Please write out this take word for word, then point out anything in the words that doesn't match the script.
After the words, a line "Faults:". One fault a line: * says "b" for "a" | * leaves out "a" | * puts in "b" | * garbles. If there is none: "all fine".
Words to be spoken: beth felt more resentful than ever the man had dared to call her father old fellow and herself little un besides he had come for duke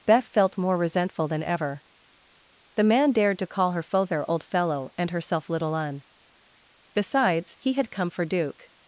beth felt more resentful than ever the man dared to call her father old fellow and herself little un besides he had come for duke
Faults:
* leaves out "had"